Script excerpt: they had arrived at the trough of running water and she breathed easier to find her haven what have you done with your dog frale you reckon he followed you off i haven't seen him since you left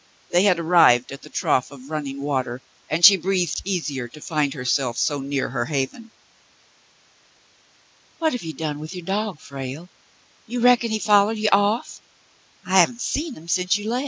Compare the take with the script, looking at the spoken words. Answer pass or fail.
fail